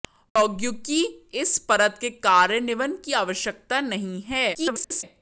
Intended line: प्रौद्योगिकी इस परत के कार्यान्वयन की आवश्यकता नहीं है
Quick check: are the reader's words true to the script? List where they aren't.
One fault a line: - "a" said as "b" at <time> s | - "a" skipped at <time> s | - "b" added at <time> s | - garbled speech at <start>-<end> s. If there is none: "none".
- garbled speech at 4.5-5.0 s